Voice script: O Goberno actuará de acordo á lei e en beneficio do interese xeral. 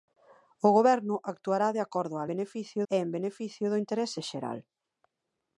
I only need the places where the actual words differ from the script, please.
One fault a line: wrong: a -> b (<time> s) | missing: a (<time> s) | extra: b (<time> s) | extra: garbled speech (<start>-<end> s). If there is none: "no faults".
wrong: lei -> beneficio (2.3 s)